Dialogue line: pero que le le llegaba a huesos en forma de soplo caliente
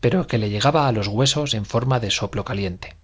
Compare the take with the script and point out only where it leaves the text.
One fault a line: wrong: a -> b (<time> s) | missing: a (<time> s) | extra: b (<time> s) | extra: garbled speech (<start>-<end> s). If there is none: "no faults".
missing: le (0.5 s)
extra: los (0.9 s)